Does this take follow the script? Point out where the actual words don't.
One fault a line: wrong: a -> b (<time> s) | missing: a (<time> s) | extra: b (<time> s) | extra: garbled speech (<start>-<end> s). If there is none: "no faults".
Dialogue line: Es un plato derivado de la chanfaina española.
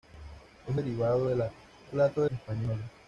missing: un plato (0.8 s)
wrong: chanfaina -> plato (1.8 s)